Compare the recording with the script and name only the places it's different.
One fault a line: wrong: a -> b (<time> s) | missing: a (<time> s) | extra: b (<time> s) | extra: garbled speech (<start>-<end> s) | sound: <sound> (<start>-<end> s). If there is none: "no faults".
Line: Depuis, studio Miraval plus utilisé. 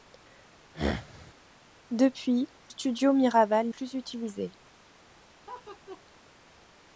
sound: throat clearing (0.7-1.3 s)
sound: laugh (5.5-6.0 s)